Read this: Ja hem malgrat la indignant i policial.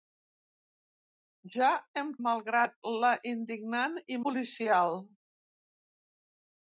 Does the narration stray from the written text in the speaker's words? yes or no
no